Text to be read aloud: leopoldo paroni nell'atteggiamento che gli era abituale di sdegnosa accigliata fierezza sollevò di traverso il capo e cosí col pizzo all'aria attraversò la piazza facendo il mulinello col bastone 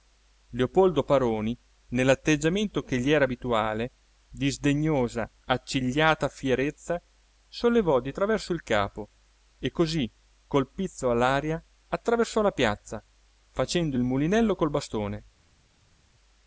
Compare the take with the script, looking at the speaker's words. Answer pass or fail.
pass